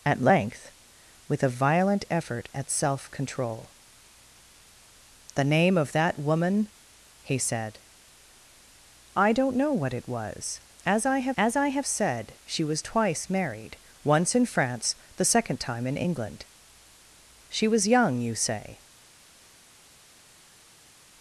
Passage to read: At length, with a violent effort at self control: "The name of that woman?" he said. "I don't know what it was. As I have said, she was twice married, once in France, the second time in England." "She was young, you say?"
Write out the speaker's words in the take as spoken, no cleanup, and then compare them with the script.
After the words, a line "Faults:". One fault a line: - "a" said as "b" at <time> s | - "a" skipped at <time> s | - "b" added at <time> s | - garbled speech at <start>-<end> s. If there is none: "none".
At length, with a violent effort at self control: "The name of that woman?" he said. "I don't know what it was. As I have as I have said, she was twice married, once in France, the second time in England." "She was young, you say?"
Faults:
- "as I have" added at 11.4 s